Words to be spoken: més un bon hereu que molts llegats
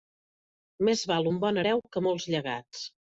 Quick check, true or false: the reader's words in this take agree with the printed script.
false